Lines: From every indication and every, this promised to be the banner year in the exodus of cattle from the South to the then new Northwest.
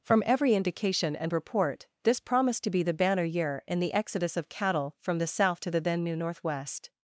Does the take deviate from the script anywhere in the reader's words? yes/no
yes